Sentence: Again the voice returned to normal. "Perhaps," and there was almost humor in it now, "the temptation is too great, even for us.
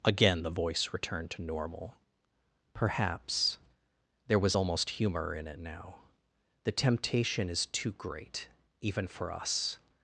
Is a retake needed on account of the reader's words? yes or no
yes